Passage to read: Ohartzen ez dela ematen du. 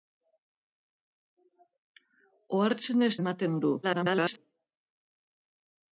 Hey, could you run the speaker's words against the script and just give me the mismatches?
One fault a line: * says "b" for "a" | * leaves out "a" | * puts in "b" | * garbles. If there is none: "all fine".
* leaves out "dela"
* garbles